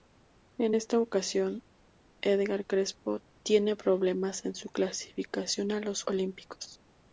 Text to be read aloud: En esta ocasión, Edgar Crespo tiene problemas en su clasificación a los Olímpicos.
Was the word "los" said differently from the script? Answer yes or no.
no